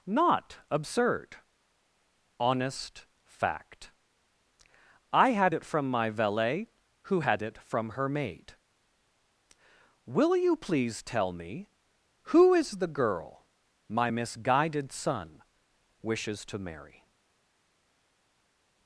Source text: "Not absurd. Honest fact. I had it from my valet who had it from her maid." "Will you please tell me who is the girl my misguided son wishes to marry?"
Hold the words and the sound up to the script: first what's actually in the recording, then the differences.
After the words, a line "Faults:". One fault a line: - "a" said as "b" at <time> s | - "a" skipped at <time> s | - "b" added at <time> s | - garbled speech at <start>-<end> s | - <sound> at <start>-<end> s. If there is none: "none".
"Not absurd. Honest fact. I had it from my valet who had it from her maid." "Will you please tell me who is the girl my misguided son wishes to marry?"
Faults:
none